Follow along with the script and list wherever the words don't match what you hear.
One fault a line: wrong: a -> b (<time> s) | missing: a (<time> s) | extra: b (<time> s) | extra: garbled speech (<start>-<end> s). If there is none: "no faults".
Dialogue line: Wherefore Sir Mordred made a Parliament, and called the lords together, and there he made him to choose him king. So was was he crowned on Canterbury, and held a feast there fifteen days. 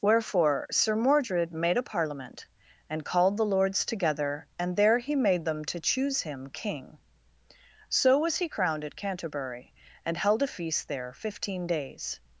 wrong: him -> them (5.5 s)
missing: was (8.4 s)
wrong: on -> at (8.8 s)